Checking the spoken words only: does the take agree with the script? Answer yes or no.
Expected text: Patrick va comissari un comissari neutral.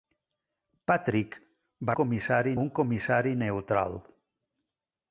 yes